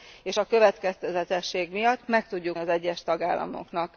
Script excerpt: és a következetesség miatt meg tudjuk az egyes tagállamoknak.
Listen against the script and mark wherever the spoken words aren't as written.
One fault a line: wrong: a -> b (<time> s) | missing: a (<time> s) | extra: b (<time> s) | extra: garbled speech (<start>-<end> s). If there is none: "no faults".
no faults